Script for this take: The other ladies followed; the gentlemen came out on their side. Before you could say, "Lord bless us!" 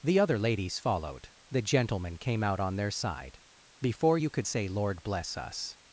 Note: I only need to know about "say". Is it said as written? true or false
true